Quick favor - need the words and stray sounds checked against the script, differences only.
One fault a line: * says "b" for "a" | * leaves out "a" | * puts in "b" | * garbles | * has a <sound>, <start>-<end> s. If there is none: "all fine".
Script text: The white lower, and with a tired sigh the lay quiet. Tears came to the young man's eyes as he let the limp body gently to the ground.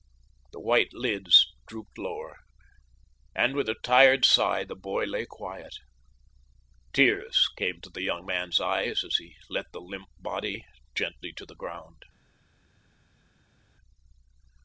* puts in "lids drooped"
* puts in "boy"